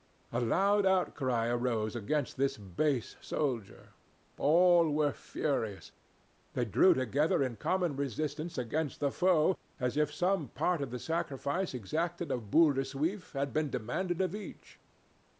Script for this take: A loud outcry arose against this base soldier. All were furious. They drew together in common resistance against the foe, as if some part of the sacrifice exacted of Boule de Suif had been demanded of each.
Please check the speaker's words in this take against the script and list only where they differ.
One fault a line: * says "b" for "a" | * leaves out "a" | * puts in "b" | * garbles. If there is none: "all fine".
all fine